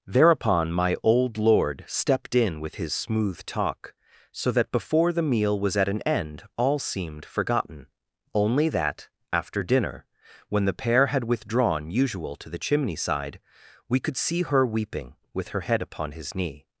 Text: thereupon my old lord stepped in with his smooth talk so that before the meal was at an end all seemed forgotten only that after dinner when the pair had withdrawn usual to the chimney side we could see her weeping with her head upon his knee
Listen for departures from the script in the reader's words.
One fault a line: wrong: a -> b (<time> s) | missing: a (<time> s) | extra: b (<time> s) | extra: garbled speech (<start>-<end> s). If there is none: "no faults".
no faults